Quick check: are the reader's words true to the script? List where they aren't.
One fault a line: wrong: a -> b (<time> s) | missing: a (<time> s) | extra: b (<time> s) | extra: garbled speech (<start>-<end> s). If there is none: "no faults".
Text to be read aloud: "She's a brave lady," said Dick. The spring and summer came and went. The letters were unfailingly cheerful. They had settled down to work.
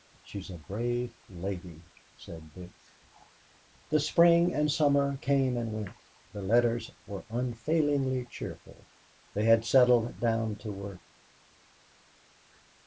no faults